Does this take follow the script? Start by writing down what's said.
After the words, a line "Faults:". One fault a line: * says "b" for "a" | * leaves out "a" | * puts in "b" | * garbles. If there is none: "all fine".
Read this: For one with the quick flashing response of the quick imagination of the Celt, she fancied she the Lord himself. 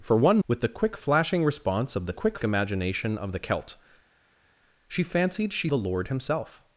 For one with the quick flashing response of the quick imagination of the Celt, she fancied she the Lord himself.
Faults:
all fine